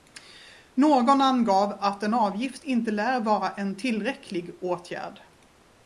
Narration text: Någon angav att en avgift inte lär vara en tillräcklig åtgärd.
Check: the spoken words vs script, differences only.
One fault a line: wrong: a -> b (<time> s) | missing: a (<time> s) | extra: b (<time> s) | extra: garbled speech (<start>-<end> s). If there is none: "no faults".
no faults